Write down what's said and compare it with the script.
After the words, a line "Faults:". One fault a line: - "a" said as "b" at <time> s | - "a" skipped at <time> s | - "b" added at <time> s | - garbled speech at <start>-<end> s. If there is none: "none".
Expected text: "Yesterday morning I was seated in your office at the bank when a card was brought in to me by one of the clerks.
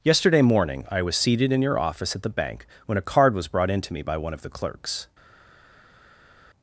"Yesterday morning I was seated in your office at the bank when a card was brought in to me by one of the clerks.
Faults:
none